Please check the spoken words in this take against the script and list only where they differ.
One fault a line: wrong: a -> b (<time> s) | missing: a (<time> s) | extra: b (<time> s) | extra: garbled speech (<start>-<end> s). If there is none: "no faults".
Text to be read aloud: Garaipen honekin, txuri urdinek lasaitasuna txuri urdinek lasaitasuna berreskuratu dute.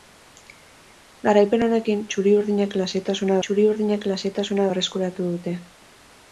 no faults